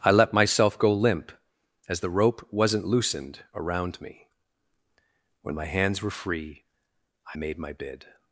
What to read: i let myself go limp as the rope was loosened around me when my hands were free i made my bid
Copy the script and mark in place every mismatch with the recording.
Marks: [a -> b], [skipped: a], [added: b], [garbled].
i let myself go limp as the rope [was -> wasn't] loosened around me when my hands were free i made my bid